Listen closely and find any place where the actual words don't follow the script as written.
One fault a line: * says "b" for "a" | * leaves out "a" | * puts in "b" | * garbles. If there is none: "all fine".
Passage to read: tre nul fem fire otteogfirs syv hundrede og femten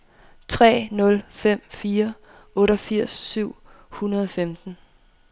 all fine